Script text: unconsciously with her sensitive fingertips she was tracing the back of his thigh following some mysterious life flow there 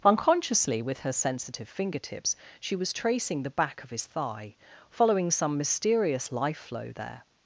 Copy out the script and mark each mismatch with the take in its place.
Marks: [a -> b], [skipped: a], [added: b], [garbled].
unconsciously with her sensitive fingertips she was tracing the back of his thigh following some mysterious life flow there